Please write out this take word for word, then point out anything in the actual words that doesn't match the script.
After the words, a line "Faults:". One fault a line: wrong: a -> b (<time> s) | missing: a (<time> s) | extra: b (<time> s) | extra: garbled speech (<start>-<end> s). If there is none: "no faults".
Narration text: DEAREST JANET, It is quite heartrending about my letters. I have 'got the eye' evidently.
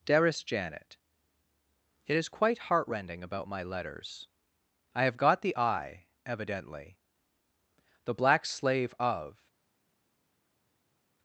DEAREST JANET, It is quite heartrending about my letters. I have 'got the eye' evidently. The black slave of
Faults:
extra: The black slave of (8.0 s)